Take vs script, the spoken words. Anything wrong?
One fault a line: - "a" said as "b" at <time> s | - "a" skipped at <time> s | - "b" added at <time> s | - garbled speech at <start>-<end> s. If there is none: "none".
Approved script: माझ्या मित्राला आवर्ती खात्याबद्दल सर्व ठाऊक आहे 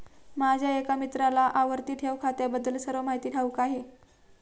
- "एका" added at 0.8 s
- "ठेव" added at 1.9 s
- "माहिती" added at 3.0 s